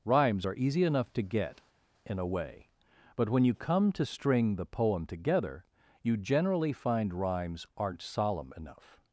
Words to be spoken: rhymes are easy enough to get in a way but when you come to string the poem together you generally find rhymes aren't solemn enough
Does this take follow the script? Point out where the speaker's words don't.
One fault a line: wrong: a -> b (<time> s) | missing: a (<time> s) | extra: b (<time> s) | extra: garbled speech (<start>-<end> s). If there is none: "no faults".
no faults